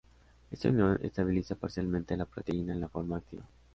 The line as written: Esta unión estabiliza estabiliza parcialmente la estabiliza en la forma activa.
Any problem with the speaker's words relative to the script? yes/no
yes